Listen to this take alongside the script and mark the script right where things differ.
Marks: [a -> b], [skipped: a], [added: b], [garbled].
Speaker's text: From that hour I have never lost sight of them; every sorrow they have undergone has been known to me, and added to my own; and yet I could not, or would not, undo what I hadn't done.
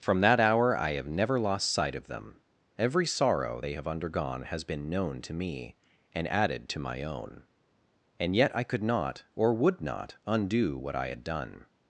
From that hour I have never lost sight of them; every sorrow they have undergone has been known to me, and added to my own; and yet I could not, or would not, undo what I [hadn't -> had] done.